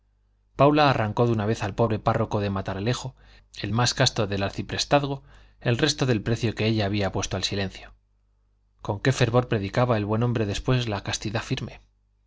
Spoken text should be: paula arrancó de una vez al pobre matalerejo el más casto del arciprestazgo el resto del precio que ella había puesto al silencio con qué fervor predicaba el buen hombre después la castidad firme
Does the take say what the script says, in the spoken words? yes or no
no